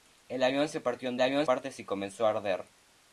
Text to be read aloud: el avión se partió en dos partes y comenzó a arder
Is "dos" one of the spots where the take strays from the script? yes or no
yes